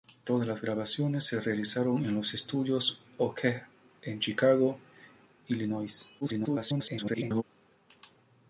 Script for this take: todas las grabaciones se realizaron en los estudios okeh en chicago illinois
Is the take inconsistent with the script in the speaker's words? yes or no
yes